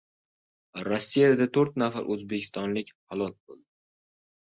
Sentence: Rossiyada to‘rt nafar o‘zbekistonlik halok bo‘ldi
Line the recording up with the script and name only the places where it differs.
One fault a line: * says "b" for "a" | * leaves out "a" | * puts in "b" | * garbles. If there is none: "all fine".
all fine